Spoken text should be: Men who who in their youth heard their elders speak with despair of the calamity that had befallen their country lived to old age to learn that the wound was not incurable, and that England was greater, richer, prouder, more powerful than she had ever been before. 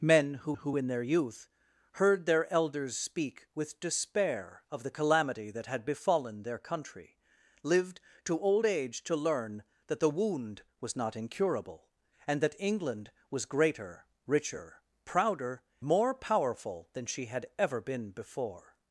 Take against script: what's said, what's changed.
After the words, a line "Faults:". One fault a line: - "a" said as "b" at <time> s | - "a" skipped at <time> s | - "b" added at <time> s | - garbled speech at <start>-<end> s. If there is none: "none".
Men who who in their youth heard their elders speak with despair of the calamity that had befallen their country lived to old age to learn that the wound was not incurable, and that England was greater, richer, prouder, more powerful than she had ever been before.
Faults:
none